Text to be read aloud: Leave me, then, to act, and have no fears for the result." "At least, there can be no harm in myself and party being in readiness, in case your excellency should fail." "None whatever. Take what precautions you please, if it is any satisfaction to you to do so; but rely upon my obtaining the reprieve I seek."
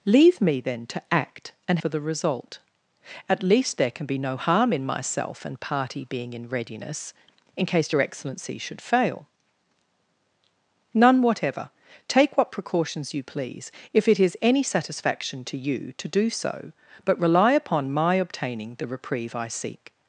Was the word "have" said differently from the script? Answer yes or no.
yes